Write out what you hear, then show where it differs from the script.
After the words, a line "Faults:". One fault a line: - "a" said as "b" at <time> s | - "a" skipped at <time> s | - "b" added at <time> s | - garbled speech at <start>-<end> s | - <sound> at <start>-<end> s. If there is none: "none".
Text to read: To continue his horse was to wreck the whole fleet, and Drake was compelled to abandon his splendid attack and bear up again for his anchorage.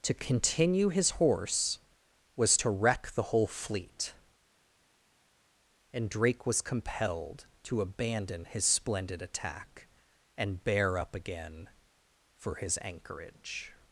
To continue his horse was to wreck the whole fleet, and Drake was compelled to abandon his splendid attack and bear up again for his anchorage.
Faults:
none